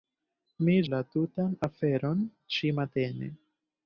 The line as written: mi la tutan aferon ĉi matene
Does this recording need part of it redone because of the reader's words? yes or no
no